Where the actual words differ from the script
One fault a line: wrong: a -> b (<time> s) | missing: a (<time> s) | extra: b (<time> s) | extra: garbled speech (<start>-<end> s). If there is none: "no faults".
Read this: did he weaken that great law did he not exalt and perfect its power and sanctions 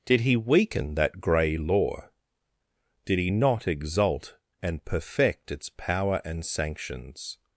wrong: great -> grey (1.2 s)